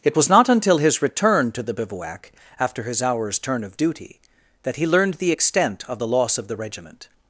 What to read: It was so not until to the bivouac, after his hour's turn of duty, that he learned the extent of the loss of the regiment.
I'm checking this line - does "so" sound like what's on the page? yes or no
no